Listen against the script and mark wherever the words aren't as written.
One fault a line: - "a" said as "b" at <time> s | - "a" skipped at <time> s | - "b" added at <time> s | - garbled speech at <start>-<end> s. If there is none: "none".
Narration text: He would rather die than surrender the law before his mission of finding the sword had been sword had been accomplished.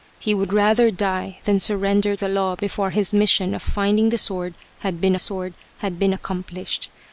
none